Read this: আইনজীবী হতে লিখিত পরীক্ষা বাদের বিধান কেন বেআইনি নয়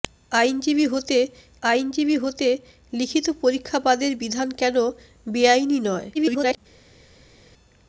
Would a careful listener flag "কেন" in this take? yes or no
no